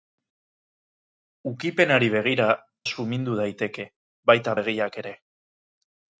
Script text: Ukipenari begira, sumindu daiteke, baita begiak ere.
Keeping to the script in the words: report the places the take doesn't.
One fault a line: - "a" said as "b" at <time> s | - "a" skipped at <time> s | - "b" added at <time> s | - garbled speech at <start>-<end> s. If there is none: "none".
none